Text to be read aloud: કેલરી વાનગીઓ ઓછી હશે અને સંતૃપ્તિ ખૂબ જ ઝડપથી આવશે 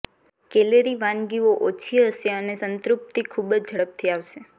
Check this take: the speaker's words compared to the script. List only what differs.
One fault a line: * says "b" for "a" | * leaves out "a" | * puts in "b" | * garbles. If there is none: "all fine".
all fine